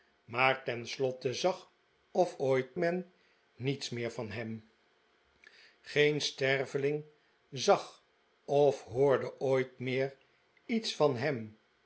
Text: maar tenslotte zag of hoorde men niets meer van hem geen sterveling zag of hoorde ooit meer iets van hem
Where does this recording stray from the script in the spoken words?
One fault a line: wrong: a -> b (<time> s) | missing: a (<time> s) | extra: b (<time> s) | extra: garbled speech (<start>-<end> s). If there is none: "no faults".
wrong: hoorde -> ooit (2.4 s)